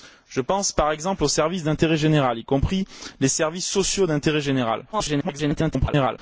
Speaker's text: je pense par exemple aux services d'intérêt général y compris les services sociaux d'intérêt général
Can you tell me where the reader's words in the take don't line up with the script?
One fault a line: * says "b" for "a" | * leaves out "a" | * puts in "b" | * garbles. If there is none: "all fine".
* garbles